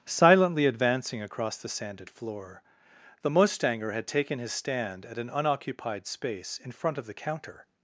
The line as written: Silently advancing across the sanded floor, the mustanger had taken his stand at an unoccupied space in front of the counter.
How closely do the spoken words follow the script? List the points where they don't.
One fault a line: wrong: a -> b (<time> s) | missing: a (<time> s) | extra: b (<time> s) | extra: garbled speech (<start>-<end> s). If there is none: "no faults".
no faults